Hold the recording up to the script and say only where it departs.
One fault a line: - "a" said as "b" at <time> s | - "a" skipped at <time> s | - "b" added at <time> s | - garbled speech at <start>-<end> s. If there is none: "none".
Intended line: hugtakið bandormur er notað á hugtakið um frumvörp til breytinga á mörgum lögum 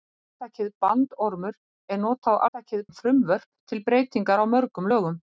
none